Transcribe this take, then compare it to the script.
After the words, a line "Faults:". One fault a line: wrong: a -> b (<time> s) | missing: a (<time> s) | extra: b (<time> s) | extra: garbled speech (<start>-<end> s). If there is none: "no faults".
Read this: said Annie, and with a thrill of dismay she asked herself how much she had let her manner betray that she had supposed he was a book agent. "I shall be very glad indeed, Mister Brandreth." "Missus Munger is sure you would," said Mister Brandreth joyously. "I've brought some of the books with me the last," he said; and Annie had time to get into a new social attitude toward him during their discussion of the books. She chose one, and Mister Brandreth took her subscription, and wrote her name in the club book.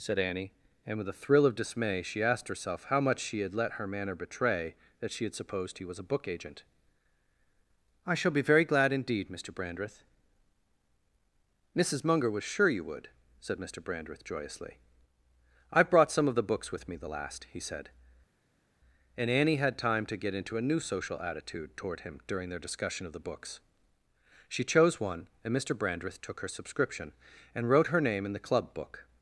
said Annie, and with a thrill of dismay she asked herself how much she had let her manner betray that she had supposed he was a book agent. "I shall be very glad indeed, Mister Brandreth." "Missus Munger was sure you would," said Mister Brandreth joyously. "I've brought some of the books with me the last," he said; and Annie had time to get into a new social attitude toward him during their discussion of the books. She chose one, and Mister Brandreth took her subscription, and wrote her name in the club book.
Faults:
wrong: is -> was (12.3 s)